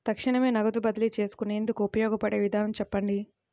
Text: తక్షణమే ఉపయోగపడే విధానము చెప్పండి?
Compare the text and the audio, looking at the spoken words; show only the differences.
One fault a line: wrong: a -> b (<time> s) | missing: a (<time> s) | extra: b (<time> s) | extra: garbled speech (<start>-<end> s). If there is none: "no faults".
extra: నగదు బదిలీ చేసుకునేందుకు (0.5 s)